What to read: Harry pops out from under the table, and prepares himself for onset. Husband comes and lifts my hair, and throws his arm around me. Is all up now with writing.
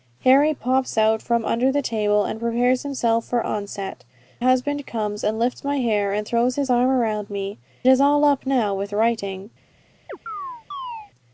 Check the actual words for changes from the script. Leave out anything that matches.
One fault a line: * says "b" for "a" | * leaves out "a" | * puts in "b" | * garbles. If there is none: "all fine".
all fine